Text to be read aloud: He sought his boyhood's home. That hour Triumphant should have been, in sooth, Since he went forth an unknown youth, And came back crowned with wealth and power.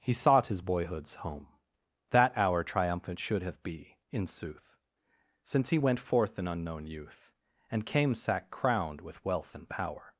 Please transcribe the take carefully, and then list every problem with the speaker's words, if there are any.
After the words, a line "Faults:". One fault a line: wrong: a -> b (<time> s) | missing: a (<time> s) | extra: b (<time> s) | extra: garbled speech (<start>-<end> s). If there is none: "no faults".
He sought his boyhood's home. That hour Triumphant should have be, in sooth, Since he went forth an unknown youth, And came sack crowned with wealth and power.
Faults:
wrong: been -> be (3.6 s)
wrong: back -> sack (8.1 s)